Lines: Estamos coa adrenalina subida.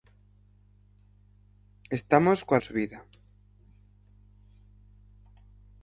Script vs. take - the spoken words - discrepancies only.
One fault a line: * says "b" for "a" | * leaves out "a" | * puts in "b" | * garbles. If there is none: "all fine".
* leaves out "adrenalina"